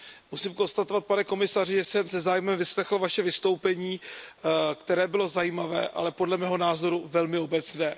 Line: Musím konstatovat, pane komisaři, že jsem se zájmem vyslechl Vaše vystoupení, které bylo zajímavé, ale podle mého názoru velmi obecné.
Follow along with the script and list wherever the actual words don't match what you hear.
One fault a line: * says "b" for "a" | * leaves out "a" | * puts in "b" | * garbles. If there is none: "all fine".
all fine